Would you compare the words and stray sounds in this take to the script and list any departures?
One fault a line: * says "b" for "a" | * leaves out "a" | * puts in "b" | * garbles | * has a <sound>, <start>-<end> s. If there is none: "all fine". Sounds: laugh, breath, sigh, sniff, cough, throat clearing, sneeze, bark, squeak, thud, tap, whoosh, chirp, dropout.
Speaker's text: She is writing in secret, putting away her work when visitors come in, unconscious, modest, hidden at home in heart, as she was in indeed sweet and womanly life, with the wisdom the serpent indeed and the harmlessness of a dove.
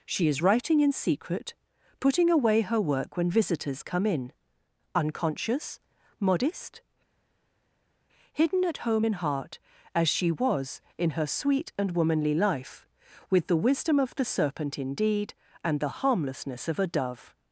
* says "her" for "indeed"
* puts in "of"